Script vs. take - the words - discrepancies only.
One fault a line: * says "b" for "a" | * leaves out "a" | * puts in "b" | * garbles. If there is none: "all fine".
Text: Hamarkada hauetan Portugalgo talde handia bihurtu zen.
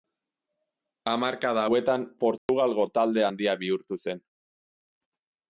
all fine